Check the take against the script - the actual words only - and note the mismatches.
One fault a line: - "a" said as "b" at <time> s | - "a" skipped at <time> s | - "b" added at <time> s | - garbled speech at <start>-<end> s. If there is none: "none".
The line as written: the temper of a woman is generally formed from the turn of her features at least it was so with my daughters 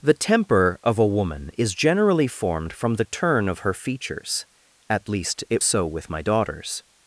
- "was" skipped at 5.6 s